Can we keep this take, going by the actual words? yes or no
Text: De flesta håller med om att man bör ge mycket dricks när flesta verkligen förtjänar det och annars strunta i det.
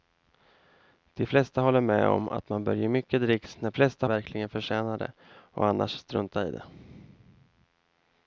yes